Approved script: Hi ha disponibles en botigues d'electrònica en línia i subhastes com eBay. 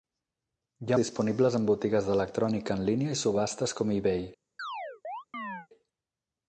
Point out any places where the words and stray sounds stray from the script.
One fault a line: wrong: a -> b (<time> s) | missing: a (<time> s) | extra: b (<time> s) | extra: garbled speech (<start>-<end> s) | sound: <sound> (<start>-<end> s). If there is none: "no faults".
sound: chirp (4.6-5.7 s)